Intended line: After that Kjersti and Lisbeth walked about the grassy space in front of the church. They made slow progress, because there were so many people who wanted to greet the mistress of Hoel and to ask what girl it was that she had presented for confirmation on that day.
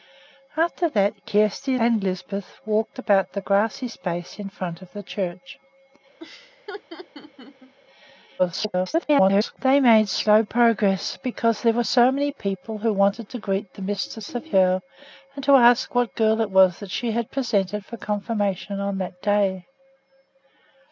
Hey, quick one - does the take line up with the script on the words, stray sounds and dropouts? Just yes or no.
no